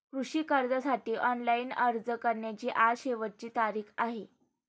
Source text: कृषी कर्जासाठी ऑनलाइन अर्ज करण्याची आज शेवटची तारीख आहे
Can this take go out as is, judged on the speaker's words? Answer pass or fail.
pass